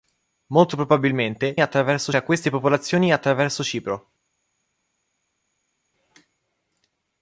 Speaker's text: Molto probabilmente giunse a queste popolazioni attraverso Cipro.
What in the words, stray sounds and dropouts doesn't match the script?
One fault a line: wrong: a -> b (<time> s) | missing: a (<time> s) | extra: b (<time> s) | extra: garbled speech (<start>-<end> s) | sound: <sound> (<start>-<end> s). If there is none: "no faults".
wrong: giunse -> attraverso (1.6 s)